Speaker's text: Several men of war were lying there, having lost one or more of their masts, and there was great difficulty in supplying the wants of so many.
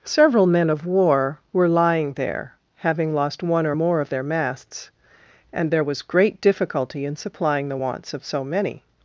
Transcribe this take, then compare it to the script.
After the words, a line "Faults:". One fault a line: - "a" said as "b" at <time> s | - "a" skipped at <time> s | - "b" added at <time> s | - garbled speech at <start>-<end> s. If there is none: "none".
Several men of war were lying there, having lost one or more of their masts, and there was great difficulty in supplying the wants of so many.
Faults:
none